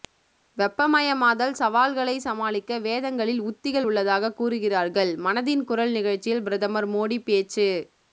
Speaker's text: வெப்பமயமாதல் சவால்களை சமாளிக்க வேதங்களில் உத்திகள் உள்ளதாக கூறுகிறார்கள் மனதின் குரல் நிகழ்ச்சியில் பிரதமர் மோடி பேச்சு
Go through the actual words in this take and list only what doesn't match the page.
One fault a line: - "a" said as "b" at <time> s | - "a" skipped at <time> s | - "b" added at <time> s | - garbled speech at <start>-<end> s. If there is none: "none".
none